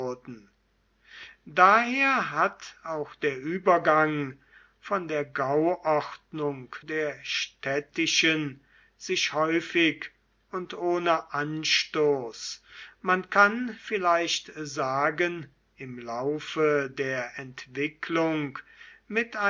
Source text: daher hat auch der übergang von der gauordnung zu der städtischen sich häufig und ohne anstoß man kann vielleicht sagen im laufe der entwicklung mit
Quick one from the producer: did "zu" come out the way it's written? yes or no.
no